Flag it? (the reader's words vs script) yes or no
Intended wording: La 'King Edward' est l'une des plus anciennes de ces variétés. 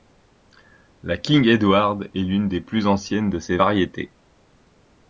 no